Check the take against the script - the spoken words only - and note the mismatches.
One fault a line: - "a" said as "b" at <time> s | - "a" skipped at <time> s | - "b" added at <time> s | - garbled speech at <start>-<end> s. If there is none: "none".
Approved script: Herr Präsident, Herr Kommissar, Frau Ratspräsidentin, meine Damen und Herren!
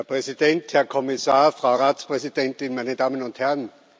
none